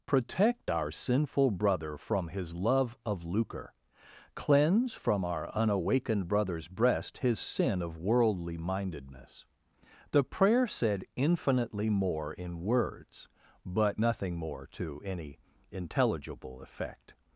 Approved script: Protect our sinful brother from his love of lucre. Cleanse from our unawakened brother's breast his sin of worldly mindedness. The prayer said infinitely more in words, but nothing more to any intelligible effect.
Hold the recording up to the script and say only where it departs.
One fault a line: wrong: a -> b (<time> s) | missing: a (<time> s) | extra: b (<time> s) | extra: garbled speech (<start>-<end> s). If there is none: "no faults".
no faults